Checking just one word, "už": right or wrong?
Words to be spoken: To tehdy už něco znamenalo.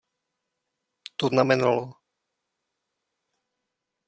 wrong